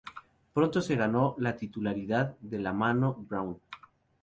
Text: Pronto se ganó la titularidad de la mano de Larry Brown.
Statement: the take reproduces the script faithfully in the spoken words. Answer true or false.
false